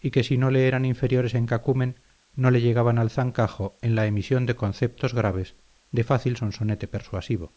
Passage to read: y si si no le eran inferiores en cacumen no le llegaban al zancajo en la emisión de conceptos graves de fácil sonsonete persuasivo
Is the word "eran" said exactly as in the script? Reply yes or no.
yes